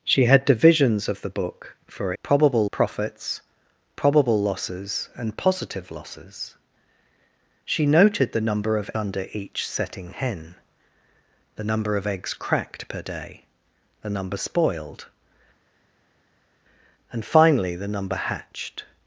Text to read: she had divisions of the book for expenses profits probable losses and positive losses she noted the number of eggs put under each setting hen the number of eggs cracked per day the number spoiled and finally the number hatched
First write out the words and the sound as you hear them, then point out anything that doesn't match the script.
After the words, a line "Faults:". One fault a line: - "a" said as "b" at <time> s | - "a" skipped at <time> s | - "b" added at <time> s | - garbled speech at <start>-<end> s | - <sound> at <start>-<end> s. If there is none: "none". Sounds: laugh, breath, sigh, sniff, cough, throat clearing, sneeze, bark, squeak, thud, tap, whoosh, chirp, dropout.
she had divisions of the book for probable profits probable losses and positive losses she noted the number of under each setting hen the number of eggs cracked per day the number spoiled and finally the number hatched
Faults:
- "expenses" said as "probable" at 2.2 s
- "eggs put" skipped at 8.9 s